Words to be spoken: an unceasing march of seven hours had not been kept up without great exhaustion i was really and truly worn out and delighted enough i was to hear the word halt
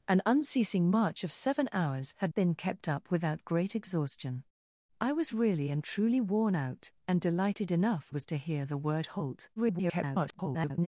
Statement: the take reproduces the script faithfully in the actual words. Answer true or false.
false